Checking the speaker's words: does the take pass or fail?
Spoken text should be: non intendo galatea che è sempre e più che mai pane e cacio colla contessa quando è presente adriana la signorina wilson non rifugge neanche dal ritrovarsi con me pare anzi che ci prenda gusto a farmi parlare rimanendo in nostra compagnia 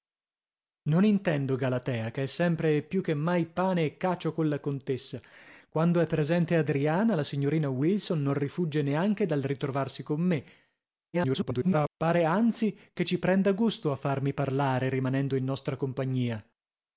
fail